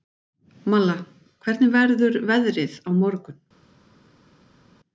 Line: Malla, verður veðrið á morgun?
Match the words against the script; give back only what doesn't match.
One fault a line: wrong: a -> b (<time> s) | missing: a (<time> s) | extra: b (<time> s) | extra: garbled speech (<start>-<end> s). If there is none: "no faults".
extra: hvernig (1.4 s)